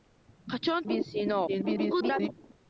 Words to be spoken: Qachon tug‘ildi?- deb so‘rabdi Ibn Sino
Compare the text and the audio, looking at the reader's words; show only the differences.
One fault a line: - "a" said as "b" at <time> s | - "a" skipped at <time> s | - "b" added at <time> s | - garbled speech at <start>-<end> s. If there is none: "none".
- "tug‘ildi deb so‘rabdi" skipped at 0.9 s
- garbled speech at 1.5-2.3 s